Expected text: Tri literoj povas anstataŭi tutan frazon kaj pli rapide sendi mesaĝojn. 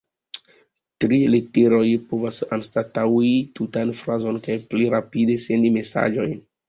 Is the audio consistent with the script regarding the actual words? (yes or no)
yes